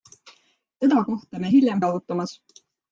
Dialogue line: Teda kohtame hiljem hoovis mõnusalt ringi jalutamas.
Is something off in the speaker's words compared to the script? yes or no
yes